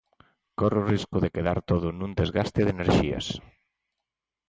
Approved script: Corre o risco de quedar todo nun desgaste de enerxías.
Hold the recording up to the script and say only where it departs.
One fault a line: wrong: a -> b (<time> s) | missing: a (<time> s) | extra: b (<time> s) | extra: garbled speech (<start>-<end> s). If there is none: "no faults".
no faults